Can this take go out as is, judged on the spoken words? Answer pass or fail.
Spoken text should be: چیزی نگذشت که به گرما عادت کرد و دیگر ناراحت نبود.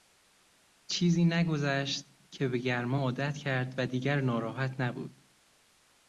pass